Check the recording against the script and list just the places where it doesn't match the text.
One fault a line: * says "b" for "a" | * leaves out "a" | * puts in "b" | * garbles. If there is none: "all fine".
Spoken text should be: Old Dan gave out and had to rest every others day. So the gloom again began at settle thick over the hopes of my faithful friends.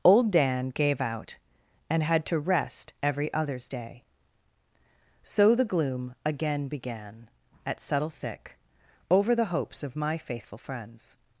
all fine